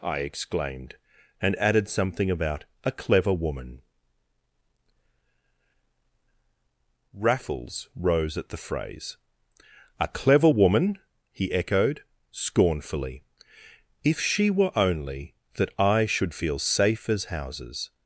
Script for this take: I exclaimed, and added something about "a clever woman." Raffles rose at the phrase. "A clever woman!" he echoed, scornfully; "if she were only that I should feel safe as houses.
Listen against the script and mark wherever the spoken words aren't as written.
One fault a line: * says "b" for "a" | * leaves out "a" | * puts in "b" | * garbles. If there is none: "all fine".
all fine